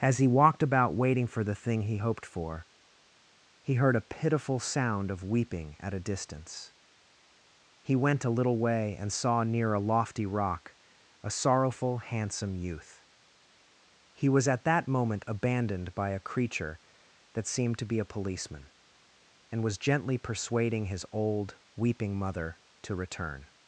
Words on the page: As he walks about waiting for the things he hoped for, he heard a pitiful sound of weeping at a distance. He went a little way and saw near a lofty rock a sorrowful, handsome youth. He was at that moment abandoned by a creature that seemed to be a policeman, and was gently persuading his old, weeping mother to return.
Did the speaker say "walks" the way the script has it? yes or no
no